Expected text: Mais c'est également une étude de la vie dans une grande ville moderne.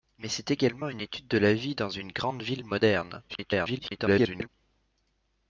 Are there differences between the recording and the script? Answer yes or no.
yes